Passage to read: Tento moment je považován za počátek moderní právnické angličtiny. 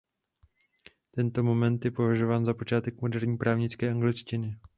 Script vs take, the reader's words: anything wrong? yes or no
no